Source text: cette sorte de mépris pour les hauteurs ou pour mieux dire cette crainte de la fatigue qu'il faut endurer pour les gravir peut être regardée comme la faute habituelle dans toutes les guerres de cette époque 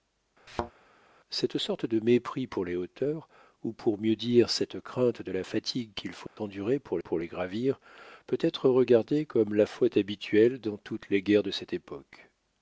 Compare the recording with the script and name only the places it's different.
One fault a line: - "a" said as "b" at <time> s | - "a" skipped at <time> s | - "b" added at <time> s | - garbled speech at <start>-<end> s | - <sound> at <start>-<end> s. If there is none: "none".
- thud at 0.5-0.7 s
- dropout at 6.3-6.4 s
- "pour" added at 7.0 s